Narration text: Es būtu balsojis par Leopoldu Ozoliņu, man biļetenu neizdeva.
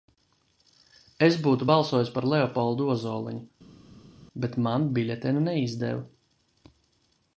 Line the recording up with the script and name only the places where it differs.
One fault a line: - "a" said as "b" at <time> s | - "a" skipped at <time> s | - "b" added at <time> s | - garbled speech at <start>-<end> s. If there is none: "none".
- "bet" added at 4.5 s